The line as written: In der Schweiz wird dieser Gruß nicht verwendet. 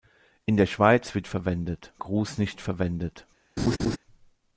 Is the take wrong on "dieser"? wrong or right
wrong